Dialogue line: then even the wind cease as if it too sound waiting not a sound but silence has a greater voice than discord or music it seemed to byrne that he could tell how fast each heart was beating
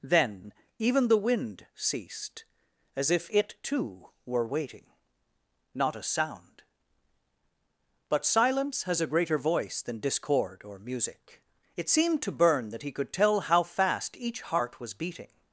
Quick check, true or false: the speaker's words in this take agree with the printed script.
false